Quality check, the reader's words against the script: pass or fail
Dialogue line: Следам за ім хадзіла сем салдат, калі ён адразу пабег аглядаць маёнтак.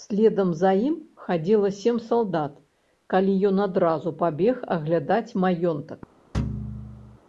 pass